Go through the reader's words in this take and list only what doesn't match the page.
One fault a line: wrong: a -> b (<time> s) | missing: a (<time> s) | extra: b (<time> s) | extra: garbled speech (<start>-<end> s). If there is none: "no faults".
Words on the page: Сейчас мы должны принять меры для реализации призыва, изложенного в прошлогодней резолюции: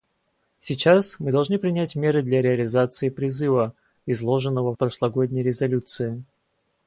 no faults